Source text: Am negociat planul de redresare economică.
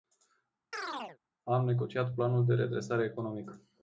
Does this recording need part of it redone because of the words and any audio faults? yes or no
yes